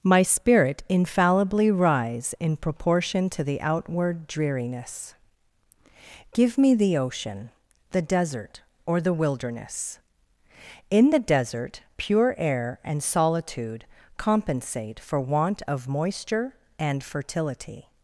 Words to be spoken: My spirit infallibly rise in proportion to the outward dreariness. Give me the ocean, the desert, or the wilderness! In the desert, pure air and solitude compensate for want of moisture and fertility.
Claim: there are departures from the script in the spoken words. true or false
false